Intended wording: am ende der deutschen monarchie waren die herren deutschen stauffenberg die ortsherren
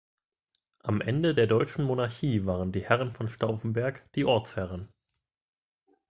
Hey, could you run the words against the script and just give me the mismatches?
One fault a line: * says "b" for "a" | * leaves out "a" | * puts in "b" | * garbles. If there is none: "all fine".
* says "von" for "deutschen"